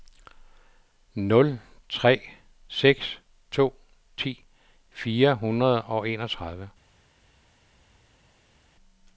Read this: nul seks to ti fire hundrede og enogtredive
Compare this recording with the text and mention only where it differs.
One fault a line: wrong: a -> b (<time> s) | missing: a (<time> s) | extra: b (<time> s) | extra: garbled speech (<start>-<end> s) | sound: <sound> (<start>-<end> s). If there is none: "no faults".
extra: tre (1.9 s)